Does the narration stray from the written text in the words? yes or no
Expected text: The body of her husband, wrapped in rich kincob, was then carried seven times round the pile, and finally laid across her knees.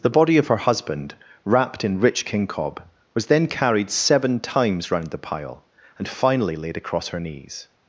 no